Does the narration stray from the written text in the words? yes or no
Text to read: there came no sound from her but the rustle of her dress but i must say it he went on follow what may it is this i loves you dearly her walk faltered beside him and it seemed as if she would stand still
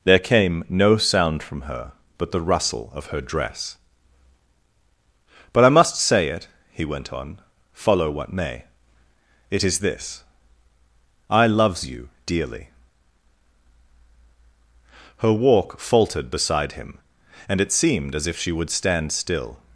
no